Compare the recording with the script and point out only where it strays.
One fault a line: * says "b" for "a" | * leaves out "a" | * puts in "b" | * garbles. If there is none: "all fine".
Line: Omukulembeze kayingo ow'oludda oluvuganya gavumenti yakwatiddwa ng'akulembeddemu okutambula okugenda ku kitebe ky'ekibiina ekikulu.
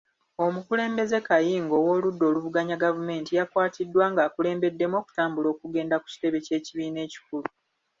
all fine